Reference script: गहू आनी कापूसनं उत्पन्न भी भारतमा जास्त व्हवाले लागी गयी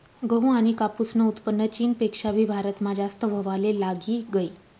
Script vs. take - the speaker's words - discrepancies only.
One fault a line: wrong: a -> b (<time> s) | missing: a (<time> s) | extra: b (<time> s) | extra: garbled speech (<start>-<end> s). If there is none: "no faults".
extra: चीनपेक्षा (1.7 s)